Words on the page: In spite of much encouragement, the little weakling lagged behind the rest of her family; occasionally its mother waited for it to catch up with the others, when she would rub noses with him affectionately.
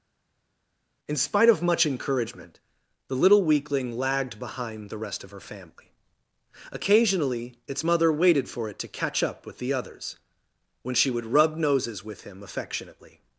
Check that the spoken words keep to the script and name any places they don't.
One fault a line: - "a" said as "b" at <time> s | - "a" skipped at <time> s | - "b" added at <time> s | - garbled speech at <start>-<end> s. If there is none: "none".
none